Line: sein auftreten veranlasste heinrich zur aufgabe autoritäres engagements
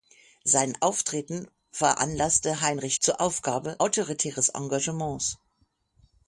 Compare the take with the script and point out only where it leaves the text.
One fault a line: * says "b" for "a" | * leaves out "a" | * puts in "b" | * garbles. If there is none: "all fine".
all fine